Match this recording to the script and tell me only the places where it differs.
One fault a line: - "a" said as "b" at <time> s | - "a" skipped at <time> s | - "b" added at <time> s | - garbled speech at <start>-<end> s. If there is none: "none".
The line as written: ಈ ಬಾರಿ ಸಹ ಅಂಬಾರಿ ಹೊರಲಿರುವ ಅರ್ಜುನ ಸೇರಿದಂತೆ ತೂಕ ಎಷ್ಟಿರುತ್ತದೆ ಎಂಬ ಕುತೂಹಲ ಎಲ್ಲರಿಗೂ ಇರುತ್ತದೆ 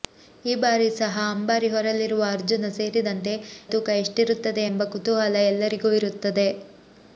none